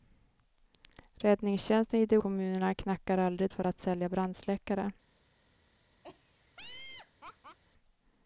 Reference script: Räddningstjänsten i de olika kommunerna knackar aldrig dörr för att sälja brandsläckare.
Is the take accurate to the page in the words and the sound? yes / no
no